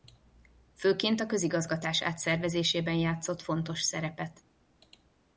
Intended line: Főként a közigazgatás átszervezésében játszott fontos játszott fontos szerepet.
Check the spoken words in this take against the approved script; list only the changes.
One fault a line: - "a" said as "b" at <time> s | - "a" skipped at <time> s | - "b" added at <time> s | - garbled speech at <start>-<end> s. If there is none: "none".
- "játszott fontos" skipped at 3.8 s